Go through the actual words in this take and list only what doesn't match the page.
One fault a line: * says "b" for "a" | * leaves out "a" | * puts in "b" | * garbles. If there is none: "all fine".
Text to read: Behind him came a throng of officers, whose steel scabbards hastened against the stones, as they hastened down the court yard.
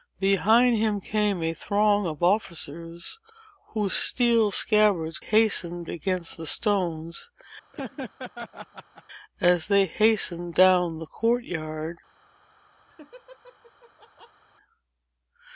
all fine